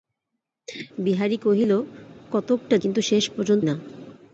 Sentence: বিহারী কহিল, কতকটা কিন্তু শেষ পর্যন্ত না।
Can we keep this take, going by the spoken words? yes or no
yes